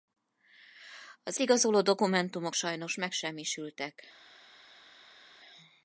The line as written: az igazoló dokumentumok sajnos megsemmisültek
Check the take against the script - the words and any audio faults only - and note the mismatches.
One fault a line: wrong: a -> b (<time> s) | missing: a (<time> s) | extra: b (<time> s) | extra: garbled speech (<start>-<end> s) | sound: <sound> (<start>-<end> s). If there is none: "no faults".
no faults